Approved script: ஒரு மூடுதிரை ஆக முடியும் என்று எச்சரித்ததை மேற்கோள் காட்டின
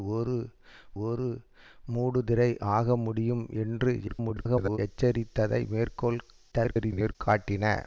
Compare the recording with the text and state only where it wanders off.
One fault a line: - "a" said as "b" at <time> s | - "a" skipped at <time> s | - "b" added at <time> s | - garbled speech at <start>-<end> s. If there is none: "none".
- "ஒரு" added at 1.0 s
- garbled speech at 4.1-4.8 s
- garbled speech at 6.5-7.2 s